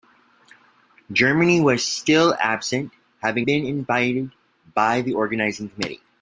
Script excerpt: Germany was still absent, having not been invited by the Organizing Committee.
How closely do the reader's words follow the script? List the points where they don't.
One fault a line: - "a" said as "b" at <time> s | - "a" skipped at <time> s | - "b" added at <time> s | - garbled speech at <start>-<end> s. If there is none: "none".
- "not" skipped at 3.5 s